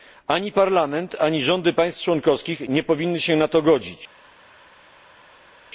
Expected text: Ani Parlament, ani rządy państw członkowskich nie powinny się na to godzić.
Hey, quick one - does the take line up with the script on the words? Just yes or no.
yes